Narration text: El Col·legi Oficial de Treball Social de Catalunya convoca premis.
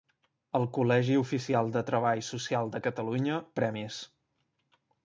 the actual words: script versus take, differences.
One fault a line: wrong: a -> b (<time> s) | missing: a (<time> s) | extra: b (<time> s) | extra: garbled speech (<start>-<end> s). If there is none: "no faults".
missing: convoca (3.4 s)